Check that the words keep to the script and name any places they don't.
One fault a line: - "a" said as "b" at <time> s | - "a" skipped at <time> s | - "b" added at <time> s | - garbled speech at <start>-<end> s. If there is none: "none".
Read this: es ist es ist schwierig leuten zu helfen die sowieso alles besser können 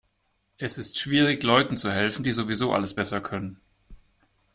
- "es ist" skipped at 1.0 s